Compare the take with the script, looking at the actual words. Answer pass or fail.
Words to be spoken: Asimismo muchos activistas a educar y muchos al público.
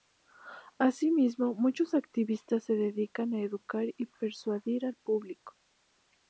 fail